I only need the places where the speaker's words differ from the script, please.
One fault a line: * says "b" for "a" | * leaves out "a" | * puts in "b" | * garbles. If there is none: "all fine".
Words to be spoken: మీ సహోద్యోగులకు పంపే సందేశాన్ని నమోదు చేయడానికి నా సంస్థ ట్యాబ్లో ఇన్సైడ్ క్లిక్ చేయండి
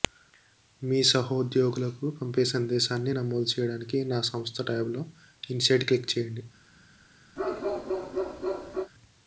all fine